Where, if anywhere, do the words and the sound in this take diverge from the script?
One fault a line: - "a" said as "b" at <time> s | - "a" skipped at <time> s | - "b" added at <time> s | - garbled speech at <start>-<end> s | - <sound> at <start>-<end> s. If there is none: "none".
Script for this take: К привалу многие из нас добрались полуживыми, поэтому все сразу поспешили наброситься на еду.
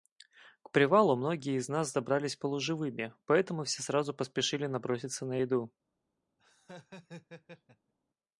- laugh at 6.4-7.9 s